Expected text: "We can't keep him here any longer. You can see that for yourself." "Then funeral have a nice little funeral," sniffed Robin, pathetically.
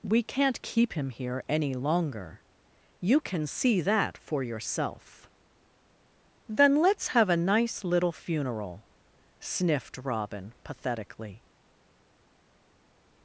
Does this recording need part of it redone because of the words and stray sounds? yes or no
yes